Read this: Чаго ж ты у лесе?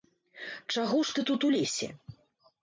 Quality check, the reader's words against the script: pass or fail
fail